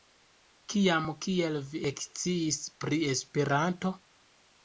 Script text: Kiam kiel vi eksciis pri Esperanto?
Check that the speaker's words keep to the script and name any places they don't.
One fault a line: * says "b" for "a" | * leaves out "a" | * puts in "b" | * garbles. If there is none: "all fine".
all fine